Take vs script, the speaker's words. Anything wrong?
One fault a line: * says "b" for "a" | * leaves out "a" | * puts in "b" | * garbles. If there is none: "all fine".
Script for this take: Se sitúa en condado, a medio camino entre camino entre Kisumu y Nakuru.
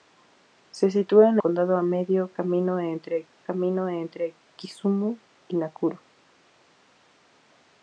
all fine